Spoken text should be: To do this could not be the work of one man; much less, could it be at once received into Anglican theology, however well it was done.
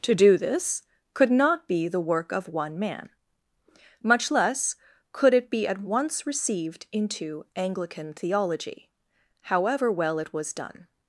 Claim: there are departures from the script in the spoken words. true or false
false